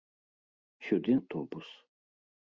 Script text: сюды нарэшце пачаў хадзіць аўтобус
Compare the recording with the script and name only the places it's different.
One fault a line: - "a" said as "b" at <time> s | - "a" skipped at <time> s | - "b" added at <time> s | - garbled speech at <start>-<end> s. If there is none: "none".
- "нарэшце пачаў хадзіць" skipped at 1.1 s